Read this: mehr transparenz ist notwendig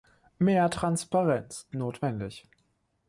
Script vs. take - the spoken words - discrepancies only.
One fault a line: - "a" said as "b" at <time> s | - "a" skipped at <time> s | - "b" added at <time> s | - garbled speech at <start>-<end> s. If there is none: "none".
- "ist" skipped at 1.7 s